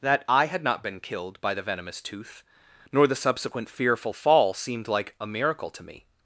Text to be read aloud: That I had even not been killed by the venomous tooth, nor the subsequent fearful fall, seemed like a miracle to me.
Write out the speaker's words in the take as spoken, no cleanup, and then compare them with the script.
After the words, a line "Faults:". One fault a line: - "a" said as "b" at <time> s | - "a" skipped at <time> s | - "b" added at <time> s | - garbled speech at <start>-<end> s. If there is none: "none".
That I had not been killed by the venomous tooth, nor the subsequent fearful fall, seemed like a miracle to me.
Faults:
- "even" skipped at 0.6 s